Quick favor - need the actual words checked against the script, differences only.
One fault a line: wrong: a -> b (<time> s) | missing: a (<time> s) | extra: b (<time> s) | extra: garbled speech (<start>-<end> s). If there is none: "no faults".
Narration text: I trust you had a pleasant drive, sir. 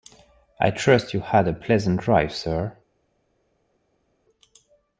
no faults